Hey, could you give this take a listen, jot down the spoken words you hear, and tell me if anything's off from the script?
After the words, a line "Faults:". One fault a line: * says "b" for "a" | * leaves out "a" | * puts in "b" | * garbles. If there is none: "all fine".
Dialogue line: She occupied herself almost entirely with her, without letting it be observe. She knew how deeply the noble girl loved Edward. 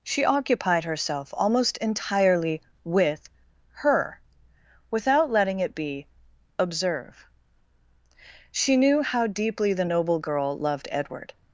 She occupied herself almost entirely with her, without letting it be observe. She knew how deeply the noble girl loved Edward.
Faults:
all fine